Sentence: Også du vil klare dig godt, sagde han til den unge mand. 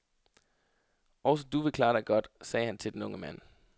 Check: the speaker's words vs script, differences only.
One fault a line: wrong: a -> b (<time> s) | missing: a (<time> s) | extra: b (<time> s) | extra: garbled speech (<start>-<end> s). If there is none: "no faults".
no faults